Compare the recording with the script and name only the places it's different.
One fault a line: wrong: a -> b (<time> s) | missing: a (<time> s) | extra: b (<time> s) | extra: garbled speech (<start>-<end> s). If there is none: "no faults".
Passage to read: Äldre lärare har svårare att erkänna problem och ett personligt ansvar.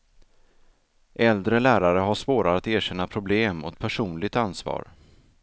no faults